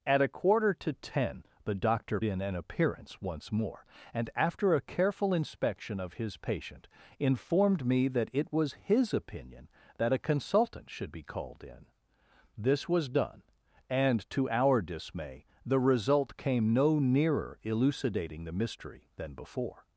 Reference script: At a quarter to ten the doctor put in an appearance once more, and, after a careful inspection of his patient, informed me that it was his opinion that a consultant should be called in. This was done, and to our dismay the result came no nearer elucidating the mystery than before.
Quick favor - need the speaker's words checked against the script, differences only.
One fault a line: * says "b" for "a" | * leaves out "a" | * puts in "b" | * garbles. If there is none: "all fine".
* leaves out "put"